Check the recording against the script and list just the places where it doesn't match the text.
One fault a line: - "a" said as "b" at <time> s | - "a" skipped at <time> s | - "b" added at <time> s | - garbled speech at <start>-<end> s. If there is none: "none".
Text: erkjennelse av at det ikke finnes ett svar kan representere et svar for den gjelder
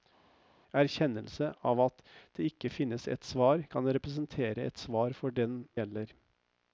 none